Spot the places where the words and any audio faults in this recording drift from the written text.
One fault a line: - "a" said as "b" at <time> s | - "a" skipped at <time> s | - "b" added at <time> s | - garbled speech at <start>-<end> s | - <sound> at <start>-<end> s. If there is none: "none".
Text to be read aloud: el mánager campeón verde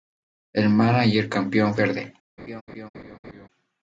- laugh at 2.4-3.5 s